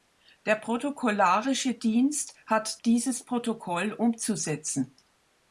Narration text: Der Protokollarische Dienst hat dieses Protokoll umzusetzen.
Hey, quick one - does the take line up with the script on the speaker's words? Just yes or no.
yes